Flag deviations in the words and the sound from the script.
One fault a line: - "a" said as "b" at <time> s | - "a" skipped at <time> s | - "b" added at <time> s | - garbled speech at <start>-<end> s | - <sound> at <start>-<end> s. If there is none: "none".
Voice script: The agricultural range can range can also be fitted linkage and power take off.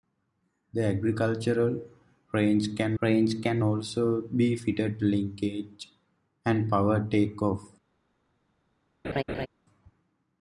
- laugh at 9.0-9.5 s